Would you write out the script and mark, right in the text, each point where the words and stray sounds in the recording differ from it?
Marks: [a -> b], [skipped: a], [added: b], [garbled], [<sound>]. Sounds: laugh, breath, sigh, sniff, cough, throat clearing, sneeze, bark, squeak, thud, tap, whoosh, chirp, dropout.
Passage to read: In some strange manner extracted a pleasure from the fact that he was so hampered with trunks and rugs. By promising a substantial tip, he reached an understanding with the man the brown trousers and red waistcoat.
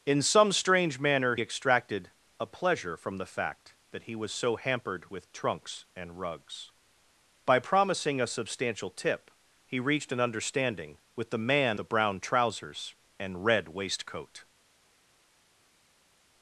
In some strange manner extracted a pleasure from the fact that he was so hampered with trunks and rugs. By promising a substantial tip, he reached an understanding with the man the brown trousers and red waistcoat.